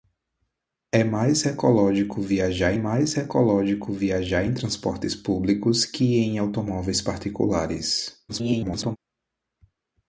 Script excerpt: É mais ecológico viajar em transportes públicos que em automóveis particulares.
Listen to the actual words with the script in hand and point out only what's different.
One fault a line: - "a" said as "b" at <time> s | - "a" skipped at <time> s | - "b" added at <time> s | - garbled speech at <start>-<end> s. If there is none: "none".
- "mais ecológico viajar" added at 2.7 s
- garbled speech at 8.3-9.0 s